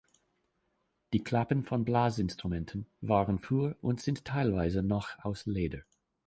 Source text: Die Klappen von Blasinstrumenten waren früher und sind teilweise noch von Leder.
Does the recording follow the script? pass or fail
fail